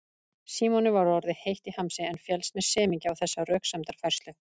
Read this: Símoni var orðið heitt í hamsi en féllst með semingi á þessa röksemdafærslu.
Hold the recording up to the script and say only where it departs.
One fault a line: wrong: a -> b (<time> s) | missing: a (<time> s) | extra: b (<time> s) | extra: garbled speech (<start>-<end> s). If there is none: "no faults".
no faults